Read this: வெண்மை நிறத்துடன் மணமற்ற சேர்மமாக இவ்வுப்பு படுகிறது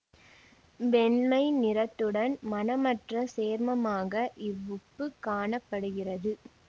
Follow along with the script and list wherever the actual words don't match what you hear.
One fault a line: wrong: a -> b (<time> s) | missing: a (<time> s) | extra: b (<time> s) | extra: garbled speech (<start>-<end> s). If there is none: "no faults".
extra: காண (5.2 s)